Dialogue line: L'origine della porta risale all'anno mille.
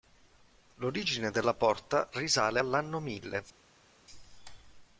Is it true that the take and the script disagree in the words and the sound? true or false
false